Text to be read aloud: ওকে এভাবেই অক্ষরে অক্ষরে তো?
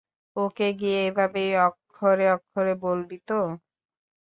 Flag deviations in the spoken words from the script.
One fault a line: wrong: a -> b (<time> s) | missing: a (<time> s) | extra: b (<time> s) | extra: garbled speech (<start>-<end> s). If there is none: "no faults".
extra: গিয়ে (0.8 s)
extra: বলবি (2.9 s)